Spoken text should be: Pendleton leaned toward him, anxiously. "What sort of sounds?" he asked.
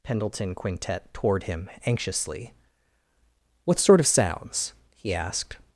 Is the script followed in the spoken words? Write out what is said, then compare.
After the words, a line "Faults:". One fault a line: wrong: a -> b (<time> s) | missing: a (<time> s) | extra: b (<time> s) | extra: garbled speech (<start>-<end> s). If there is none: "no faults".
Pendleton quintet toward him, anxiously. "What sort of sounds?" he asked.
Faults:
wrong: leaned -> quintet (0.6 s)